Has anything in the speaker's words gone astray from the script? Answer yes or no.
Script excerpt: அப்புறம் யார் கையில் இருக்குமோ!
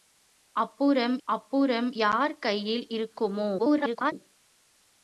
yes